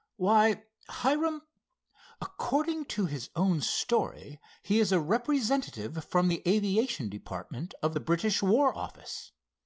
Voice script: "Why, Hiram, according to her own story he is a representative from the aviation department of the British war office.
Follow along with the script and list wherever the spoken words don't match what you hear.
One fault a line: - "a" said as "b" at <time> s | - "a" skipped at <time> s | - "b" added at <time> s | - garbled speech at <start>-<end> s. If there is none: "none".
- "her" said as "his" at 3.0 s